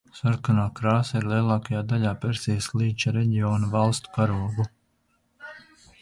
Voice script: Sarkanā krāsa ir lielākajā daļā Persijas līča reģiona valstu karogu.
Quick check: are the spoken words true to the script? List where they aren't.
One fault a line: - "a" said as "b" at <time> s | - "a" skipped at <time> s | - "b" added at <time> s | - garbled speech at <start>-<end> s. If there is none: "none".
none